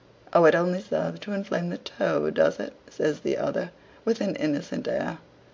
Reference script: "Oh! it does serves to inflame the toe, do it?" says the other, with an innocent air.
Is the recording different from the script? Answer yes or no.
yes